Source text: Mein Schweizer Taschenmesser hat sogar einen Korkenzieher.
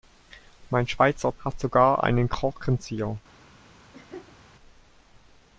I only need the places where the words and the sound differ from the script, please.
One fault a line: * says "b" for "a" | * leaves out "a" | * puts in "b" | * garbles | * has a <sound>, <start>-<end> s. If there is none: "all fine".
* leaves out "Taschenmesser"
* has a laugh, 3.9-4.4 s